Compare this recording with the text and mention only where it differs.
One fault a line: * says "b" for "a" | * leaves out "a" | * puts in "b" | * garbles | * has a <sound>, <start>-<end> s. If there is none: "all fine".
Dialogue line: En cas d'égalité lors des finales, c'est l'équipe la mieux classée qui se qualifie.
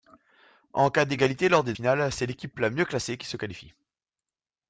all fine